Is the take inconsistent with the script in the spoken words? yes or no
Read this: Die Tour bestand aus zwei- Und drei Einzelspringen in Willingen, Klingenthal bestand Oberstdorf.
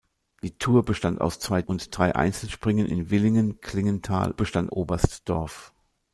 no